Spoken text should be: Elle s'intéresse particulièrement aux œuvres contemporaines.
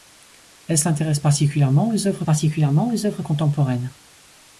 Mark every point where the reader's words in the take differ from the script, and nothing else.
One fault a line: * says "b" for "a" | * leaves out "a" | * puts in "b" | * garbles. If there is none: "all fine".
* puts in "particulièrement aux œuvres"